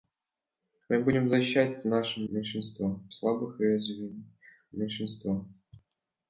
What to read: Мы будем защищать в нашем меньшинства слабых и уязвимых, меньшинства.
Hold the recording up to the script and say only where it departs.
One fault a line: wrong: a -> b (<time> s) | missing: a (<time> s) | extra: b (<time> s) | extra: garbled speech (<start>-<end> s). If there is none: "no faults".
no faults